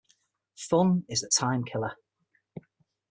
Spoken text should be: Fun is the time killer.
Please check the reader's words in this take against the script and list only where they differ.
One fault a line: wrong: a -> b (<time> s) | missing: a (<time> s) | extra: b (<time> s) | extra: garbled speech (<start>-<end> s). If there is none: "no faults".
no faults